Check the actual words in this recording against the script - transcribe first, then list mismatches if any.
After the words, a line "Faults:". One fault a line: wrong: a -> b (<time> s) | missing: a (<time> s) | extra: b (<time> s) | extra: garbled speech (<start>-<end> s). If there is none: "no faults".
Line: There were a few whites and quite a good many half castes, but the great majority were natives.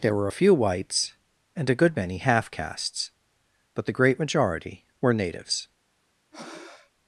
There were a few whites and a good many half castes, but the great majority were natives.
Faults:
missing: quite (1.7 s)